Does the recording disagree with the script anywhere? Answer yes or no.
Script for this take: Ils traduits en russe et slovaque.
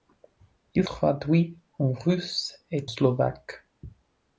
no